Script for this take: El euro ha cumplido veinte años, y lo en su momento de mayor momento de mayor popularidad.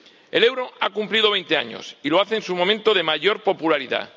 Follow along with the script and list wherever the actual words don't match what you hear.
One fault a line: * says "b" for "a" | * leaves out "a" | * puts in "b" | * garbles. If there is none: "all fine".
* puts in "hace"
* leaves out "momento de mayor"